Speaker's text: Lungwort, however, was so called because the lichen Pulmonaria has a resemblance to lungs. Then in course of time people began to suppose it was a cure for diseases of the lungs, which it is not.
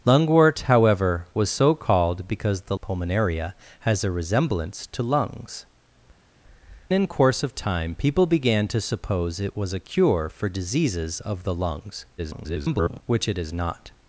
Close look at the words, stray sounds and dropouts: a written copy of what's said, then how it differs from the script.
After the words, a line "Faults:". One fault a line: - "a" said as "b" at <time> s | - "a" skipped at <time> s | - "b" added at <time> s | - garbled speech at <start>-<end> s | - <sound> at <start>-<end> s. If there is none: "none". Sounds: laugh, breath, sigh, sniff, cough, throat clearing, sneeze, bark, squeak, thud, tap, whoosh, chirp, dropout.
Lungwort, however, was so called because the Pulmonaria has a resemblance to lungs. In course of time people began to suppose it was a cure for diseases of the lungs, [garbled] which it is not.
Faults:
- "lichen" skipped at 2.8 s
- "Then" skipped at 5.6 s
- garbled speech at 12.2-13.0 s